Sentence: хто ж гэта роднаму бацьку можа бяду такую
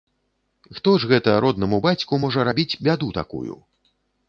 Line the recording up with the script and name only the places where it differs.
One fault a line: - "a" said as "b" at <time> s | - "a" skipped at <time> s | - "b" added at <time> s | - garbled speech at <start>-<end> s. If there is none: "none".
- "рабіць" added at 2.5 s